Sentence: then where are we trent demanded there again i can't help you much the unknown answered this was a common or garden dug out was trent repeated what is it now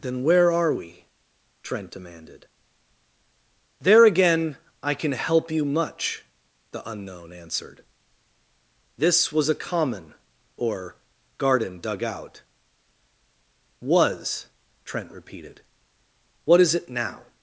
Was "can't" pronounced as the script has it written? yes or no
no